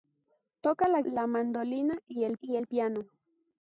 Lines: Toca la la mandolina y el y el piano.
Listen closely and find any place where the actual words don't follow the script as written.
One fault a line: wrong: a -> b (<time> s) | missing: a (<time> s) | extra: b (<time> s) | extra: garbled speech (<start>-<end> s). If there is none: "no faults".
no faults